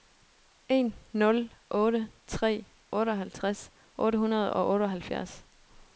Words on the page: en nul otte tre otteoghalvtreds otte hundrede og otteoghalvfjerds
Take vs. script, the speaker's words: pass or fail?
pass